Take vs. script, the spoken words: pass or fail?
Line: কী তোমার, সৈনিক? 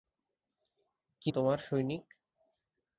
pass